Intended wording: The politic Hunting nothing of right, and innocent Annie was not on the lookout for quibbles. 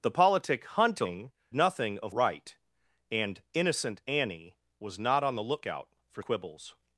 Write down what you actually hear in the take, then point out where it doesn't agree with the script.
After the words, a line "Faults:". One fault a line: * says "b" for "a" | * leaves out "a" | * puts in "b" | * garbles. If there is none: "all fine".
The politic Hunting nothing of right, and innocent Annie was not on the lookout for quibbles.
Faults:
all fine